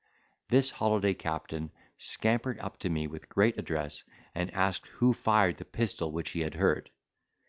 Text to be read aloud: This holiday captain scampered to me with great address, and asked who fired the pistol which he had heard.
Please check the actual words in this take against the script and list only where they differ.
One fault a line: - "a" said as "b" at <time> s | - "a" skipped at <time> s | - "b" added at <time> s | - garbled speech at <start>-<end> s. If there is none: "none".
- "up" added at 2.6 s